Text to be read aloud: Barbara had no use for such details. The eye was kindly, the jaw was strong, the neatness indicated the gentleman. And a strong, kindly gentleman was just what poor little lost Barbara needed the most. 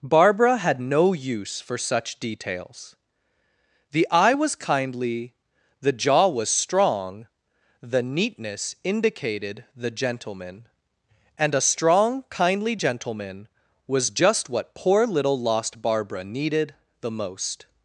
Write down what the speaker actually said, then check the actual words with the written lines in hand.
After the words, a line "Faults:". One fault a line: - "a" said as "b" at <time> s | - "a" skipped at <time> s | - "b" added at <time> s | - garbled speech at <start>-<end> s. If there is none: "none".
Barbara had no use for such details. The eye was kindly, the jaw was strong, the neatness indicated the gentleman. And a strong, kindly gentleman was just what poor little lost Barbara needed the most.
Faults:
none